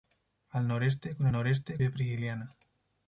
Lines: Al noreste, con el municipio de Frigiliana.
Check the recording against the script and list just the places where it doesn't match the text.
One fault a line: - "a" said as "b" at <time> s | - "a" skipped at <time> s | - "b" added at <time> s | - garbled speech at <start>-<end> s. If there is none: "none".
- "municipio" said as "noreste" at 1.3 s